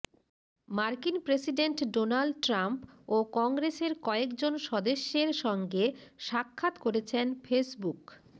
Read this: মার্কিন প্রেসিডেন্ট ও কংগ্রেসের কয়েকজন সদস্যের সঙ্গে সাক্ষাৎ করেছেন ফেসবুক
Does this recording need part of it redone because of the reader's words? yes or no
yes